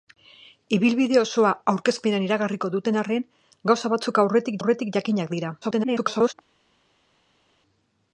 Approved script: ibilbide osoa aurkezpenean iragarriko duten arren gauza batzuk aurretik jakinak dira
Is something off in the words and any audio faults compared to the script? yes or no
yes